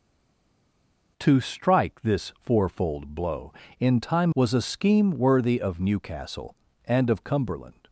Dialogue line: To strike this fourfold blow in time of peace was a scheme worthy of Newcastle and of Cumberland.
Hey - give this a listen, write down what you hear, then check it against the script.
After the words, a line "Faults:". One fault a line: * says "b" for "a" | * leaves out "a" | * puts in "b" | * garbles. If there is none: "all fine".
To strike this fourfold blow in time was a scheme worthy of Newcastle and of Cumberland.
Faults:
* leaves out "of peace"